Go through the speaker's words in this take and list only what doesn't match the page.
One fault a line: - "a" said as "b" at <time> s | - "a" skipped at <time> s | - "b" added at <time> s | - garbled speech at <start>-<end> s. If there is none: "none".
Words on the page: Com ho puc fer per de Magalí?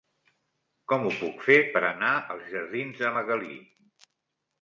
- "anar als jardins" added at 1.9 s